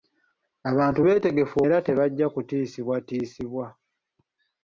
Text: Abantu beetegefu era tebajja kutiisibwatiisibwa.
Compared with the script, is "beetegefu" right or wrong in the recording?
right